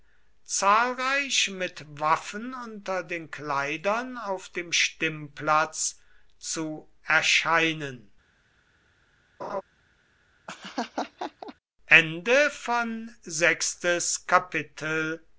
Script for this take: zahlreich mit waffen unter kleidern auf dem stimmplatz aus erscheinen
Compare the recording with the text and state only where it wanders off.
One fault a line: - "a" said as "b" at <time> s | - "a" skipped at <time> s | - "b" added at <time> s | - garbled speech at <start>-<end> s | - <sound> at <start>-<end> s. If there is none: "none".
- "den" added at 3.0 s
- "aus" said as "zu" at 6.4 s
- laugh at 9.4-9.6 s
- laugh at 10.5-11.5 s